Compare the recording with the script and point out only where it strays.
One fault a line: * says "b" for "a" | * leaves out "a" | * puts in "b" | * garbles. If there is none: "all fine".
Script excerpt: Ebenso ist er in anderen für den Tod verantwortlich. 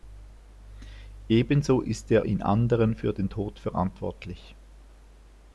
all fine